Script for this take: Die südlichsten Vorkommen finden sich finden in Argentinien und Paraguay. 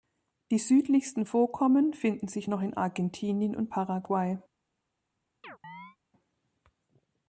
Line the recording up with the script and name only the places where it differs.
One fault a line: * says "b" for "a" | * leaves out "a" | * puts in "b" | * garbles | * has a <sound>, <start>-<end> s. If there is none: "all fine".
* says "noch" for "finden"
* has a chirp, 5.4-6.0 s